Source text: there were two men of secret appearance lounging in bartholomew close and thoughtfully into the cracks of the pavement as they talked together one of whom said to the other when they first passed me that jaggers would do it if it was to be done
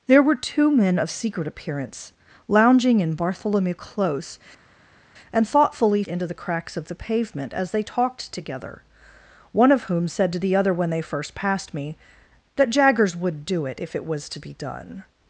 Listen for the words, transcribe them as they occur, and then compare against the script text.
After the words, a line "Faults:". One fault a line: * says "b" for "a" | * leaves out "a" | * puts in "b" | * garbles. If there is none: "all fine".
there were two men of secret appearance lounging in bartholomew close and thoughtfully into the cracks of the pavement as they talked together one of whom said to the other when they first passed me that jaggers would do it if it was to be done
Faults:
all fine